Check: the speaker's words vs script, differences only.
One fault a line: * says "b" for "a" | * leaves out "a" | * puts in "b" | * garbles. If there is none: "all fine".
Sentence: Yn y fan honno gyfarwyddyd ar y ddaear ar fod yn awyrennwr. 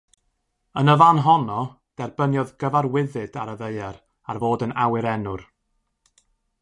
* puts in "derbyniodd"